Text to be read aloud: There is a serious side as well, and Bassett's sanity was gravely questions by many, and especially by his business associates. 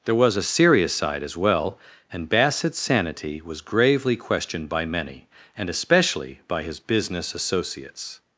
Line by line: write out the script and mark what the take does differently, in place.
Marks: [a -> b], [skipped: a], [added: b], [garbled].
There [is -> was] a serious side as well, and Bassett's sanity was gravely [questions -> questioned] by many, and especially by his business associates.